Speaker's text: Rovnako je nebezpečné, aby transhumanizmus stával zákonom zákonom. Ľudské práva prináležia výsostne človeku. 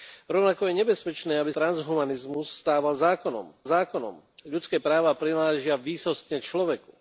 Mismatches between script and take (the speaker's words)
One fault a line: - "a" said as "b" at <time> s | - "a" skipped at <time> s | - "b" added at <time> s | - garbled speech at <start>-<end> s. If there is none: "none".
none